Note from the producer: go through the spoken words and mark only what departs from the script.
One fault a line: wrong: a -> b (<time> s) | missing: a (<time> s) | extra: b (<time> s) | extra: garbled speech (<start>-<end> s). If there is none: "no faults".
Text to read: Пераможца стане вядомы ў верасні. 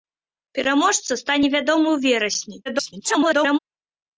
extra: garbled speech (2.7-3.6 s)